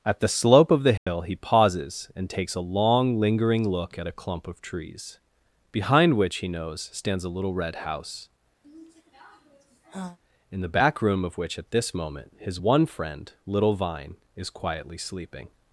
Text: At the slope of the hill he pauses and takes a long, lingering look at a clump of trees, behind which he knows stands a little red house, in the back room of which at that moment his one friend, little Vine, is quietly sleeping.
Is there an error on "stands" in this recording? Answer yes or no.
no